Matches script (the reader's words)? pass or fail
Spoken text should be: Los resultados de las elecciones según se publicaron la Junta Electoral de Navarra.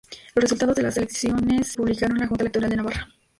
fail